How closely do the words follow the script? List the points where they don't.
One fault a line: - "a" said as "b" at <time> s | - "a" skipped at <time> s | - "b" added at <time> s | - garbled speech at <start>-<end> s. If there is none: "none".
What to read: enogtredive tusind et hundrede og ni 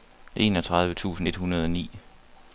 none